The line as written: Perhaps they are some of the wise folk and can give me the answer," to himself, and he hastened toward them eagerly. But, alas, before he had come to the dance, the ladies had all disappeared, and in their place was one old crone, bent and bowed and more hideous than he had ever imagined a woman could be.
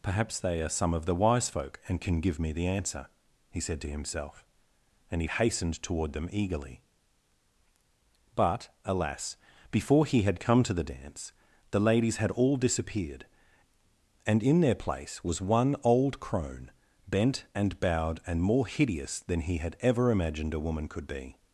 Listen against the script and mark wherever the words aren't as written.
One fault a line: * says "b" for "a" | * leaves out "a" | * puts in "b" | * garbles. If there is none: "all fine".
* puts in "he said"